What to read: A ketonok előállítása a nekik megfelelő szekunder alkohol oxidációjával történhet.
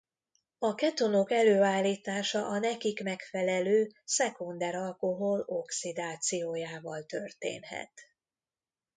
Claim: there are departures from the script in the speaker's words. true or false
false